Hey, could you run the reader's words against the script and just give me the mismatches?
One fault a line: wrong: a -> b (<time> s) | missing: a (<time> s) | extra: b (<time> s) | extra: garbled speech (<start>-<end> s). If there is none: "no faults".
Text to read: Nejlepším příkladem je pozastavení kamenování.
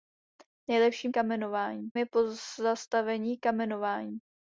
wrong: příkladem -> kamenování (1.1 s)